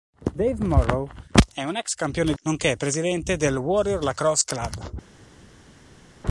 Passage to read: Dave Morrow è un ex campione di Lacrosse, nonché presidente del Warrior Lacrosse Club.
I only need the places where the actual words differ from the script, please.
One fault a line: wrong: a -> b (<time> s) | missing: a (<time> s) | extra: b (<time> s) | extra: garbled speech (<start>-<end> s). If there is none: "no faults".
missing: di Lacrosse (2.3 s)